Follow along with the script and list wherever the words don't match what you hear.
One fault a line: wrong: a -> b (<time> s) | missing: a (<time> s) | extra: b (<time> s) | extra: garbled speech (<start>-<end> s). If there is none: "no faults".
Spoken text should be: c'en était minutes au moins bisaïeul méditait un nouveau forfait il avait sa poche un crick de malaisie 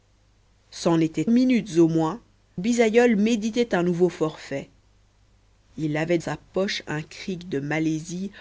no faults